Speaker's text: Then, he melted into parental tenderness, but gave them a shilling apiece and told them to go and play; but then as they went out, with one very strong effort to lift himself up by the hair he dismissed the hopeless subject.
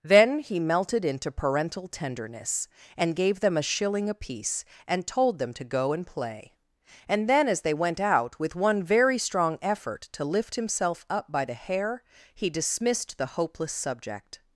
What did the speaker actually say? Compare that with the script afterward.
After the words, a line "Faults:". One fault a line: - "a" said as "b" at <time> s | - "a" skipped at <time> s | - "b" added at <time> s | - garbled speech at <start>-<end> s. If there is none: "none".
Then, he melted into parental tenderness, and gave them a shilling apiece and told them to go and play; and then as they went out, with one very strong effort to lift himself up by the hair he dismissed the hopeless subject.
Faults:
- "but" said as "and" at 3.0 s
- "but" said as "and" at 7.1 s